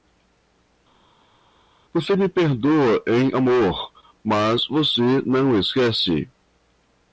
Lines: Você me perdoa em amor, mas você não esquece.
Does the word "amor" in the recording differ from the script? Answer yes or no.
no